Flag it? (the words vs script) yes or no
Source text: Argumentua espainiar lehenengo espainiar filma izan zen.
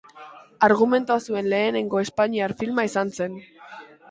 yes